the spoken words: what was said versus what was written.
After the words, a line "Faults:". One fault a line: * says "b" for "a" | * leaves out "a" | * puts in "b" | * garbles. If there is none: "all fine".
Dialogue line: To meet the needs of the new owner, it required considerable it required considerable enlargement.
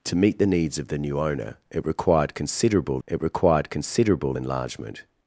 To meet the needs of the new owner, it required considerable it required considerable enlargement.
Faults:
all fine